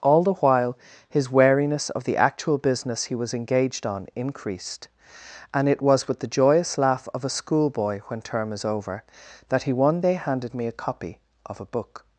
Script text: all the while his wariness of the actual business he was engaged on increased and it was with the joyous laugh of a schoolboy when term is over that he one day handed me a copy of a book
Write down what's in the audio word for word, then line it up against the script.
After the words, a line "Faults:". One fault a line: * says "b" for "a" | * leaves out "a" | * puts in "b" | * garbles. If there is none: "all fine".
all the while his wariness of the actual business he was engaged on increased and it was with the joyous laugh of a schoolboy when term is over that he one day handed me a copy of a book
Faults:
all fine